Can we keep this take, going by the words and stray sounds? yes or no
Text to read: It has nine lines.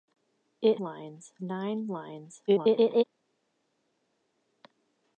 no